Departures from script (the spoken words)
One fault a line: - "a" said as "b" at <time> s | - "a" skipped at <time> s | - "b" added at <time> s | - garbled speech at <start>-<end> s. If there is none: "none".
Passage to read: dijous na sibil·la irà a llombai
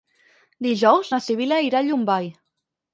none